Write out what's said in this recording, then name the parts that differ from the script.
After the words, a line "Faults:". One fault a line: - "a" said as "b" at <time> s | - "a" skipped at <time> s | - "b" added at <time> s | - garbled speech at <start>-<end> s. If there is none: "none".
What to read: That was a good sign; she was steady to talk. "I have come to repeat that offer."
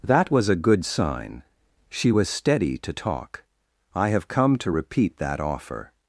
That was a good sign; she was steady to talk. "I have come to repeat that offer."
Faults:
none